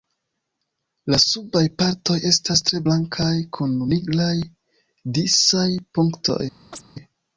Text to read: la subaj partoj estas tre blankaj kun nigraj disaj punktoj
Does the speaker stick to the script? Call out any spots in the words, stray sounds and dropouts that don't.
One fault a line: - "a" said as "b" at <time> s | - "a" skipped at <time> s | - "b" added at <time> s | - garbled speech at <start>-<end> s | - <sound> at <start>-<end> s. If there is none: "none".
- chirp at 6.7-6.8 s